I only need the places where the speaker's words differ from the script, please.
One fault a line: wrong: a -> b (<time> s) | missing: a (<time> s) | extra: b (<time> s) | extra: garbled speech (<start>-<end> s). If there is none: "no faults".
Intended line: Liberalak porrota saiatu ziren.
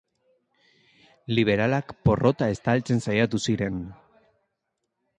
extra: estaltzen (2.5 s)